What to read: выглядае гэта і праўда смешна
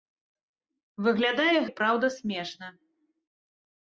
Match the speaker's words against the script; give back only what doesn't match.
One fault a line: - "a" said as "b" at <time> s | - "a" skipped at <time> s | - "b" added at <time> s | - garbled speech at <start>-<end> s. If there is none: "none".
- "гэта" skipped at 1.6 s